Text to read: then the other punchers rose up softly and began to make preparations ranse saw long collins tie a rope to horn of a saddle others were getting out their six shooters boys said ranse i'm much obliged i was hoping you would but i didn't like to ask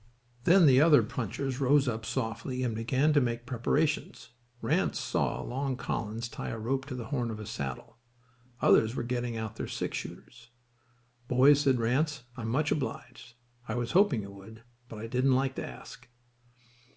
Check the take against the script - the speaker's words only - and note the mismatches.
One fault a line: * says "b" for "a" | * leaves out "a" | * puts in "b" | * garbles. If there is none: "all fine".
* puts in "the"